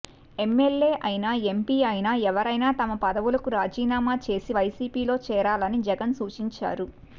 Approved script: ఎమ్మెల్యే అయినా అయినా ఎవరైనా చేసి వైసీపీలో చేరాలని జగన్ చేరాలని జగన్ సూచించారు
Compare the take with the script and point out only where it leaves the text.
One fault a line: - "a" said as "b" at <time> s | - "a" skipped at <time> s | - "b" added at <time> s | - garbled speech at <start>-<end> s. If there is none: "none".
- "ఎంపీ" added at 1.5 s
- "తమ పదవులకు రాజీనామా" added at 2.8 s
- "చేరాలని జగన్" skipped at 6.2 s